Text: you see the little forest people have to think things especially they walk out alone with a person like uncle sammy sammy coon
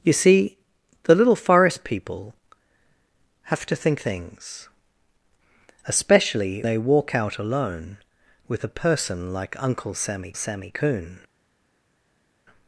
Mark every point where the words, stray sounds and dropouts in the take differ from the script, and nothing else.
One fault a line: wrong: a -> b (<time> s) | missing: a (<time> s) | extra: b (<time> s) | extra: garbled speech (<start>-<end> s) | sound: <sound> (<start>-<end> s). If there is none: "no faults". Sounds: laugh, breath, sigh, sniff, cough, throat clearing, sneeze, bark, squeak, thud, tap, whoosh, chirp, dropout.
no faults